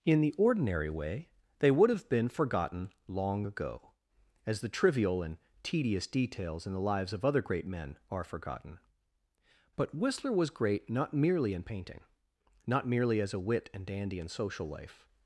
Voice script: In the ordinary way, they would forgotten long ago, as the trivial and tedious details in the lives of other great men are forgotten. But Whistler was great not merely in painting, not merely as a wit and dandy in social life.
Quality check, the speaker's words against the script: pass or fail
fail